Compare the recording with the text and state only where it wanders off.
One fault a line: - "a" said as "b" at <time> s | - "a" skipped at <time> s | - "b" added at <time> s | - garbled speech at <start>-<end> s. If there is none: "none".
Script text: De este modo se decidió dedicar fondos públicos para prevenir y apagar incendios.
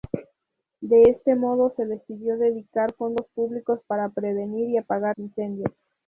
none